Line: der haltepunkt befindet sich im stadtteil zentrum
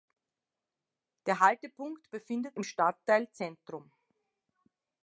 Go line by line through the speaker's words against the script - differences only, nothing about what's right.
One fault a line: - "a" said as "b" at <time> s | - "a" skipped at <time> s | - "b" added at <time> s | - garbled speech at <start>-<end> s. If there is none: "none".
- "sich" skipped at 2.6 s